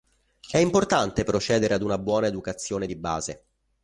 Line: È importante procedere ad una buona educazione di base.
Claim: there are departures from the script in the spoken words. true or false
false